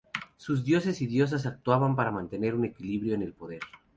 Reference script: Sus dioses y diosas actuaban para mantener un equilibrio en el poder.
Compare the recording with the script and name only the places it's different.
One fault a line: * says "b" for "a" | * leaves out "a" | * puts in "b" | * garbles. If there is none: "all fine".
all fine